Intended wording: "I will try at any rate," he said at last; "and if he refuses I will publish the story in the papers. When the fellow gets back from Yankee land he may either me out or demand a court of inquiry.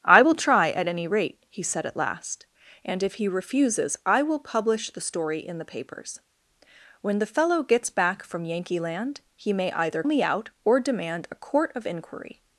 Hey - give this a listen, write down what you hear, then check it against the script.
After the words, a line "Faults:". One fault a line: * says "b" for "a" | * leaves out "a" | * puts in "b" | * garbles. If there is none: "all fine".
"I will try at any rate," he said at last; "and if he refuses I will publish the story in the papers. When the fellow gets back from Yankee land he may either me out or demand a court of inquiry.
Faults:
all fine